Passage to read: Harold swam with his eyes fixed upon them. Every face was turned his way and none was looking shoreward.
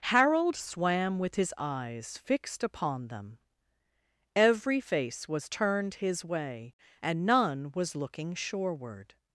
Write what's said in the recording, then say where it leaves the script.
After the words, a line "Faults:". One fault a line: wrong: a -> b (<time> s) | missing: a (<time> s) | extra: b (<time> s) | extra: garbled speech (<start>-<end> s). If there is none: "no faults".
Harold swam with his eyes fixed upon them. Every face was turned his way and none was looking shoreward.
Faults:
no faults